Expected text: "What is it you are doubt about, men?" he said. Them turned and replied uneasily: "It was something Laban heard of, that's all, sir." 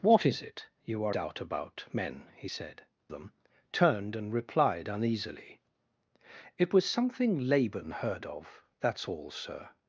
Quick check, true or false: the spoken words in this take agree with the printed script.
true